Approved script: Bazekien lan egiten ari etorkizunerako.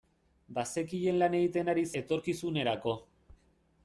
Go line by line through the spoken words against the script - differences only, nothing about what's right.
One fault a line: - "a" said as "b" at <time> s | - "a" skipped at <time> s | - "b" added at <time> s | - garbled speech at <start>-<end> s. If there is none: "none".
none